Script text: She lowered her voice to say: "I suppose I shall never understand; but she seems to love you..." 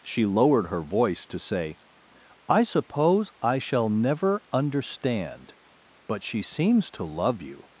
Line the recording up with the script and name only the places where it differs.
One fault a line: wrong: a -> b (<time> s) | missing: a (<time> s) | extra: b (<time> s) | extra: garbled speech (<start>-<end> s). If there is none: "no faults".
no faults